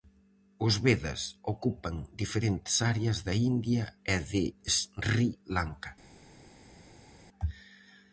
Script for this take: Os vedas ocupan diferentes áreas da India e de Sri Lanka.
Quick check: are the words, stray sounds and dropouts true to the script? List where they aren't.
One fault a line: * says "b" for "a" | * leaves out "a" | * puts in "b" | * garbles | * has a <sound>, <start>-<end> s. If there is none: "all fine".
all fine